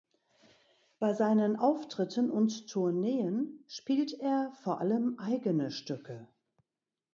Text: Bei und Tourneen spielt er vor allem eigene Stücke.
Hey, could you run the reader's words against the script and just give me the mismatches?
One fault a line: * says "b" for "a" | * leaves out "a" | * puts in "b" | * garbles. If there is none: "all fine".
* puts in "seinen Auftritten"